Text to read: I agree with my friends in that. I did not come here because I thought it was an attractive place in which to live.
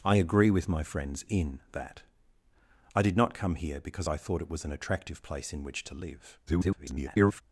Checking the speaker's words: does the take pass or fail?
fail